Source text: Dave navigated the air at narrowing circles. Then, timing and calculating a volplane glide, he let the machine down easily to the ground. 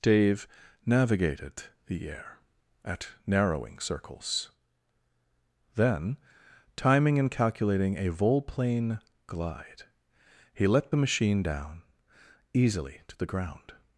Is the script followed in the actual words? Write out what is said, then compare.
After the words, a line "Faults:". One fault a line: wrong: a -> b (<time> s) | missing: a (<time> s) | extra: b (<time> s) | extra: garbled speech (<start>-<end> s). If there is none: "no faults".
Dave navigated the air at narrowing circles. Then, timing and calculating a volplane glide, he let the machine down easily to the ground.
Faults:
no faults